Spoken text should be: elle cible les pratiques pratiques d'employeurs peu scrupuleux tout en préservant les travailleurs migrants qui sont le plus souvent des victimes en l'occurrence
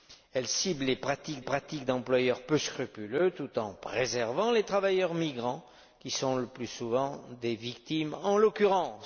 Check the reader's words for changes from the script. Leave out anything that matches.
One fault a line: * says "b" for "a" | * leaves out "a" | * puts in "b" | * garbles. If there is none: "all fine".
all fine